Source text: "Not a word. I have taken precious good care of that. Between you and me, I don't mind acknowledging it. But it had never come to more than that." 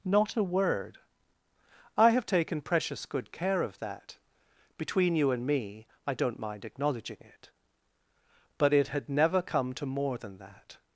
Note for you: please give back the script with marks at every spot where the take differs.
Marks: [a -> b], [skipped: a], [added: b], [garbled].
"Not a word. I have taken precious good care of that. Between you and me, I don't mind acknowledging it. But it had never come to more than that."